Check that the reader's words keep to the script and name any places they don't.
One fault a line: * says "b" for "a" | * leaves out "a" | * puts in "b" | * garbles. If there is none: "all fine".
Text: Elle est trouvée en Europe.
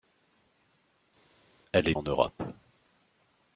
* leaves out "trouvée"